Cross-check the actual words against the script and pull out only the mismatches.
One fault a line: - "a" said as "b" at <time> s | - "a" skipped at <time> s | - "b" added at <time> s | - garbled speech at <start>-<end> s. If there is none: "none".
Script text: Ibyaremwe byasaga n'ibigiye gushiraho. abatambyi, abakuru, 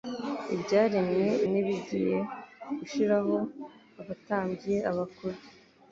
- "byasaga" skipped at 1.3 s